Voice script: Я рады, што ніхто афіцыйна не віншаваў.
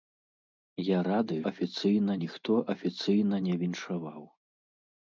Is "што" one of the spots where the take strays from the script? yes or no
yes